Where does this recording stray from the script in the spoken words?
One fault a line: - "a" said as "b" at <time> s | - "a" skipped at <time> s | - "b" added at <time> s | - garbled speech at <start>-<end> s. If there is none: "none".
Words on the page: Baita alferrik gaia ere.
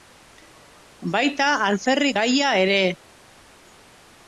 none